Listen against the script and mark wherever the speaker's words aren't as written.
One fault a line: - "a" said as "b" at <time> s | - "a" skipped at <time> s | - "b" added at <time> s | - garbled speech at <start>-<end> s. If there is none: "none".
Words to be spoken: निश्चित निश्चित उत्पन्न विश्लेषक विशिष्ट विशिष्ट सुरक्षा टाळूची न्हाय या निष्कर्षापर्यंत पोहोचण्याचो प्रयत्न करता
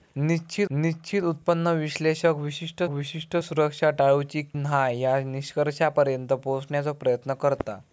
none